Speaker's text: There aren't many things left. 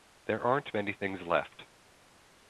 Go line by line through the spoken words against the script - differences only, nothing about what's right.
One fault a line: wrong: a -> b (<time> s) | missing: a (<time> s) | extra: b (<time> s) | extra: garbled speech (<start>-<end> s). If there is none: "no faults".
no faults